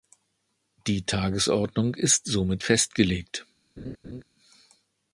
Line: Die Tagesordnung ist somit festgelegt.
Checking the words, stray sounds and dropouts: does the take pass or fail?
fail